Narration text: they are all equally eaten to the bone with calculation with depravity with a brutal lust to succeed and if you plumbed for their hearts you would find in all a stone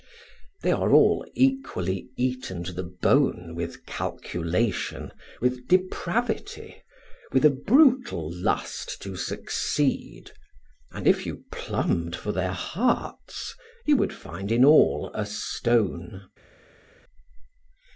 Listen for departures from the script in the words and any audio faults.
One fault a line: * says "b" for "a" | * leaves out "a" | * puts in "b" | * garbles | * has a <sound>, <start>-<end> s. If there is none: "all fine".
all fine